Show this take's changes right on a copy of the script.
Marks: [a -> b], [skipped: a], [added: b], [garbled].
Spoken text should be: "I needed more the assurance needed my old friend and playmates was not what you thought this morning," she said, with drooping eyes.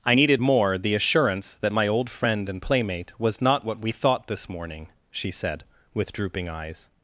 "I needed more the assurance [needed -> that] my old friend and [playmates -> playmate] was not what [you -> we] thought this morning," she said, with drooping eyes.